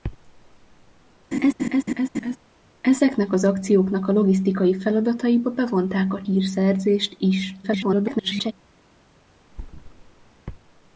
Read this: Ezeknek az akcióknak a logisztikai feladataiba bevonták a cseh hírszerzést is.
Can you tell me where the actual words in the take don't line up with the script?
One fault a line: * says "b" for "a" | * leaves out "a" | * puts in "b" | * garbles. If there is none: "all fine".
* leaves out "cseh"
* garbles